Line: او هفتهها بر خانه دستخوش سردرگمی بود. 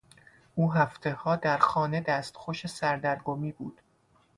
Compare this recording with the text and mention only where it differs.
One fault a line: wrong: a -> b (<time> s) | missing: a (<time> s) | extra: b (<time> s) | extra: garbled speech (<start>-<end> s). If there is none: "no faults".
wrong: بر -> در (1.4 s)